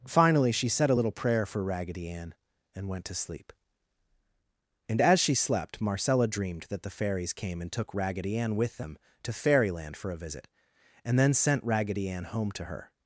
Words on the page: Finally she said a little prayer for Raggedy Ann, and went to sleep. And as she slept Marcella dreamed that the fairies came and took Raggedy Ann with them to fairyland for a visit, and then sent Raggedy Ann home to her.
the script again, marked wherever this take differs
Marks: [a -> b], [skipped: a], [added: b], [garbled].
Finally she said a little prayer for Raggedy Ann, and went to sleep. And as she slept Marcella dreamed that the fairies came and took Raggedy Ann with them to fairyland for a visit, and then sent Raggedy Ann home to her.